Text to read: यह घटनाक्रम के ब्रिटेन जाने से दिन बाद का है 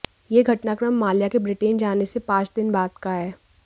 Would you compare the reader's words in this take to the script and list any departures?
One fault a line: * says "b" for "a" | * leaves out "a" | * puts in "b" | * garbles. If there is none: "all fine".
* puts in "माल्या"
* puts in "पांच"